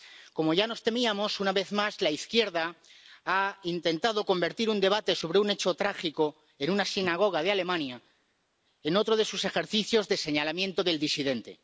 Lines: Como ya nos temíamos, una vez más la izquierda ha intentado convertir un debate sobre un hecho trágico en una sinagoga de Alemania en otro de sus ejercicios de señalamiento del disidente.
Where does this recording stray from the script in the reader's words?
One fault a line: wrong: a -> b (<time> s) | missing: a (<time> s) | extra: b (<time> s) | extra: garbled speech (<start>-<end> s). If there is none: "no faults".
no faults